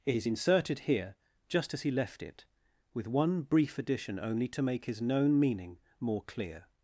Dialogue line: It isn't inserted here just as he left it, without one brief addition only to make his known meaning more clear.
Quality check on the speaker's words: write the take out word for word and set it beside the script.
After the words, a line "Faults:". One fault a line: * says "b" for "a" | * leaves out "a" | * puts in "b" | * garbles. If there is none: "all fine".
It is inserted here just as he left it, with one brief addition only to make his known meaning more clear.
Faults:
* says "is" for "isn't"
* says "with" for "without"